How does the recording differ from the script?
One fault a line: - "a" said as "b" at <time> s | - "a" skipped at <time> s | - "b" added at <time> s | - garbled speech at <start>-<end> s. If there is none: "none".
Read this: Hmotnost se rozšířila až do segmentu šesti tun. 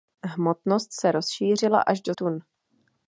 - "segmentu šesti" skipped at 2.1 s